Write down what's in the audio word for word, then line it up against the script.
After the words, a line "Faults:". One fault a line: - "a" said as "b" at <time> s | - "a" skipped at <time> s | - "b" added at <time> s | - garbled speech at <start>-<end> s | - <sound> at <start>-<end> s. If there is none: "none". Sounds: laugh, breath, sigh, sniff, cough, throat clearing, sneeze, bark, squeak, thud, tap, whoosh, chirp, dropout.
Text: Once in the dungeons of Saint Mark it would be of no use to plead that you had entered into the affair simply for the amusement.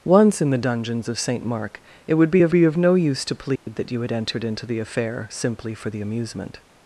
Once in the dungeons of Saint Mark it would be of be of no use to plead that you had entered into the affair simply for the amusement.
Faults:
- "be of" added at 2.5 s
- dropout at 3.6-3.7 s